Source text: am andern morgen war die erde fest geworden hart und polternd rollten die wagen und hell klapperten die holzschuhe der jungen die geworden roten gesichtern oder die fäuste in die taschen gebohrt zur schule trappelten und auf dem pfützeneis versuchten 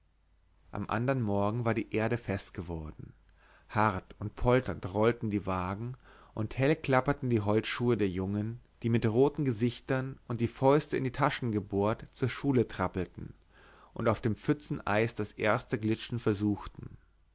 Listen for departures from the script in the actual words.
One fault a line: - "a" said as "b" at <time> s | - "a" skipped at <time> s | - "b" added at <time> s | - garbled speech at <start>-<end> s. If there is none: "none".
- "geworden" said as "mit" at 8.9 s
- "oder" said as "und" at 10.3 s
- "das erste glitschen" added at 15.2 s